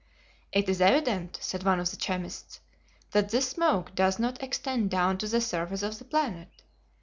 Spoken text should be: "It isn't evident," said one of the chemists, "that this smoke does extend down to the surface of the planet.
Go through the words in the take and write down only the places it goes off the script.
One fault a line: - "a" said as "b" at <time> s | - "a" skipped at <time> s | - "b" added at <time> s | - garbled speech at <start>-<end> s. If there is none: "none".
- "isn't" said as "is" at 0.7 s
- "not" added at 4.2 s